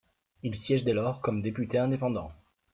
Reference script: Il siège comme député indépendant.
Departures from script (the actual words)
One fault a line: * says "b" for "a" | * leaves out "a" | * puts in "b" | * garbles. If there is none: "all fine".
* puts in "dès lors"